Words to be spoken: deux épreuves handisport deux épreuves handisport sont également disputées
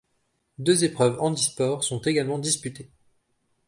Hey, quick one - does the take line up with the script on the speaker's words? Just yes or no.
no